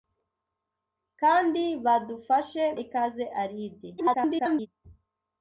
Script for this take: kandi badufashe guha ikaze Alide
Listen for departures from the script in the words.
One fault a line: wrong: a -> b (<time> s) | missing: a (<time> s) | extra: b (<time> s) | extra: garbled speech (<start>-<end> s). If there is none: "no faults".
missing: guha (2.6 s)
extra: garbled speech (4.0-4.7 s)